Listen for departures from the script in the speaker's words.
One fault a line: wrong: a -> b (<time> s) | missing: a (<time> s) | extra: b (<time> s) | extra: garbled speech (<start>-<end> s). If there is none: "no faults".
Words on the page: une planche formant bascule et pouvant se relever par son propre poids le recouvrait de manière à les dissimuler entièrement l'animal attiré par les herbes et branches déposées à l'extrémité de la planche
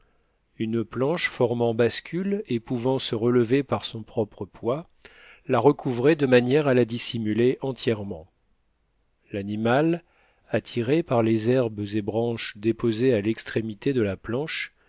wrong: le -> la (5.5 s)
wrong: les -> la (6.7 s)